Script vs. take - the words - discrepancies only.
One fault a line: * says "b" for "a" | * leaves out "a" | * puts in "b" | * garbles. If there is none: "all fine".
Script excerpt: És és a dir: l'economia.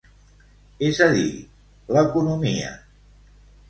* leaves out "és"